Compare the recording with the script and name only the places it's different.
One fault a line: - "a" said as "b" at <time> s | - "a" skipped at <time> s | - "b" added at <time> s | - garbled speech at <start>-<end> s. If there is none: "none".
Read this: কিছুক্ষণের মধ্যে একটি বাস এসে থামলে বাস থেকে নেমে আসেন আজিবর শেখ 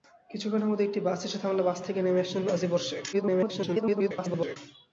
- garbled speech at 3.1-4.6 s